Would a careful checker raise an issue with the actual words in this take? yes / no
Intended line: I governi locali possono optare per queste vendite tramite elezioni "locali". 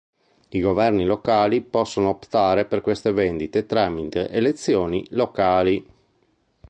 no